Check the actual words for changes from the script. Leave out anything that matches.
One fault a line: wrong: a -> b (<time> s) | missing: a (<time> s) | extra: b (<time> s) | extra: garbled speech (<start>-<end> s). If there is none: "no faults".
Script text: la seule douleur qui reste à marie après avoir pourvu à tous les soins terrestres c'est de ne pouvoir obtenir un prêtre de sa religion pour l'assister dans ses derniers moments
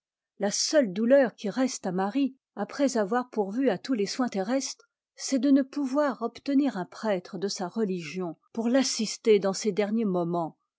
no faults